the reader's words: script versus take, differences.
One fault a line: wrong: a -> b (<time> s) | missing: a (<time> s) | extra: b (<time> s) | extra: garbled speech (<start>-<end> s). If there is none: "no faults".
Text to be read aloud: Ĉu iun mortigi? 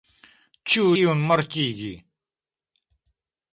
no faults